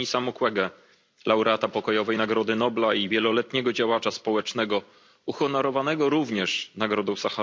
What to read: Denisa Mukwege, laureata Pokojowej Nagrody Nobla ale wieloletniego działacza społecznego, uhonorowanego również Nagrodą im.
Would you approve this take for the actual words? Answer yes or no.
no